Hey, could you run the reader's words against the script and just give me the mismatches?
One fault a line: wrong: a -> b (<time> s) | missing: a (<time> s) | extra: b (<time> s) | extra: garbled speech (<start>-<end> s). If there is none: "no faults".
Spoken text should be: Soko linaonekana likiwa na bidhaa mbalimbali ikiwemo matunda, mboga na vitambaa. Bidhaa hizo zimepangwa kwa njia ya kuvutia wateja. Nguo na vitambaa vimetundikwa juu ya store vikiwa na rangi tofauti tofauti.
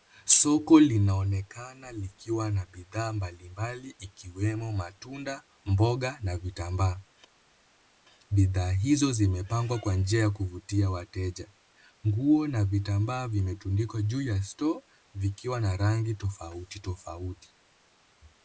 no faults